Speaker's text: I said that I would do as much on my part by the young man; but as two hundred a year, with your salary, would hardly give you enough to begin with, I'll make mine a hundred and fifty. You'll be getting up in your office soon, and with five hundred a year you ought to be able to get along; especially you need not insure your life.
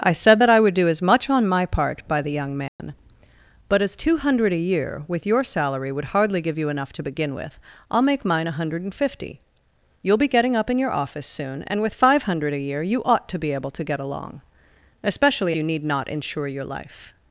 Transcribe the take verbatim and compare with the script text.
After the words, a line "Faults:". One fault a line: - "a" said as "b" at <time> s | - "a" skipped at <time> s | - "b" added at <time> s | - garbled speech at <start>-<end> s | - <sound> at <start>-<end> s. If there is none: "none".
I said that I would do as much on my part by the young man; but as two hundred a year, with your salary, would hardly give you enough to begin with, I'll make mine a hundred and fifty. You'll be getting up in your office soon, and with five hundred a year you ought to be able to get along; especially you need not insure your life.
Faults:
- dropout at 2.7-2.8 s